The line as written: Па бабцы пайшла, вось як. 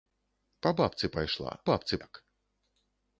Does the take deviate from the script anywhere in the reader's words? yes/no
yes